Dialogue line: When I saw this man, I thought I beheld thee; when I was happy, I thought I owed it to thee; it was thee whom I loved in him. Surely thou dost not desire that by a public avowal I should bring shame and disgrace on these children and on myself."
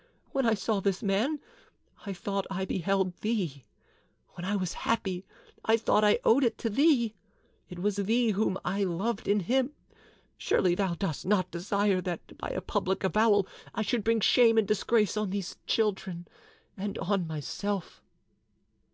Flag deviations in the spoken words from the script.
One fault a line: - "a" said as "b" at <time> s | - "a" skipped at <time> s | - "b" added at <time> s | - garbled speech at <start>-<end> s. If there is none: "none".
none